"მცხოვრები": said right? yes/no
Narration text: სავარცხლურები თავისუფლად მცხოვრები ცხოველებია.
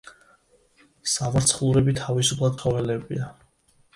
no